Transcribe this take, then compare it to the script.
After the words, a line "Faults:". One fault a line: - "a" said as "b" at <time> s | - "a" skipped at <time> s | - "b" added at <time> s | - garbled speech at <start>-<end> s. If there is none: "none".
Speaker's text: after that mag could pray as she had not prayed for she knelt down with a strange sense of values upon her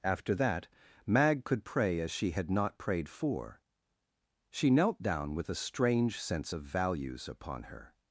after that mag could pray as she had not prayed for she knelt down with a strange sense of values upon her
Faults:
none